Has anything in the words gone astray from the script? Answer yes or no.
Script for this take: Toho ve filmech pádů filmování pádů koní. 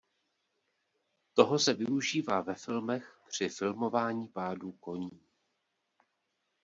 yes